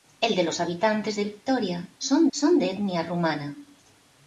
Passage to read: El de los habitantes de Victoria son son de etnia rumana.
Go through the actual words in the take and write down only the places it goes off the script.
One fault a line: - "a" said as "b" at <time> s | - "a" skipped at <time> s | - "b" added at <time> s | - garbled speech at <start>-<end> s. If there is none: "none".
none